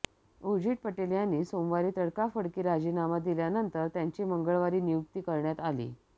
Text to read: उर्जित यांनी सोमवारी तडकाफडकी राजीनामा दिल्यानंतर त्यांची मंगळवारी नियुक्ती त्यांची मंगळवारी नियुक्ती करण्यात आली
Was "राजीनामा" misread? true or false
false